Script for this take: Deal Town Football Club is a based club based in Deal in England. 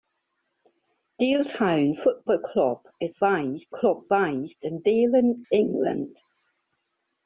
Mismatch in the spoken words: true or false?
false